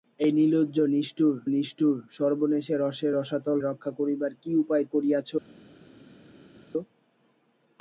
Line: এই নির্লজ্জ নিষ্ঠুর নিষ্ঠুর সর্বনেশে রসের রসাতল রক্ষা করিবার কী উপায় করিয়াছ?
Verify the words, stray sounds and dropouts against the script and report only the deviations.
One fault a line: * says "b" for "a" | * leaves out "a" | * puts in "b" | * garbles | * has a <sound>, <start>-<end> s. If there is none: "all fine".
all fine